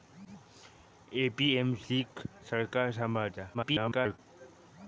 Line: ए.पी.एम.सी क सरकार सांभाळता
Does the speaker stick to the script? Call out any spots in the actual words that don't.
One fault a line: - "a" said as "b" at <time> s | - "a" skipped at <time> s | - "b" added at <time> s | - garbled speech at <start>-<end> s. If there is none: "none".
- garbled speech at 3.5-4.2 s